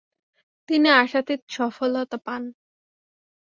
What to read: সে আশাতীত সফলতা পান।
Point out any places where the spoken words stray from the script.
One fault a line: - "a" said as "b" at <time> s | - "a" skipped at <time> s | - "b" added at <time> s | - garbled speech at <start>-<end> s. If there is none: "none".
- "সে" said as "তিনি" at 0.7 s